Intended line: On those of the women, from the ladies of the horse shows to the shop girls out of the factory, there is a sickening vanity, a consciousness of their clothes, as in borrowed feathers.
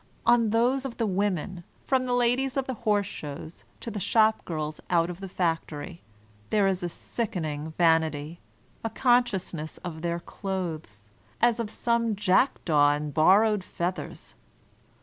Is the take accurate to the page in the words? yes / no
no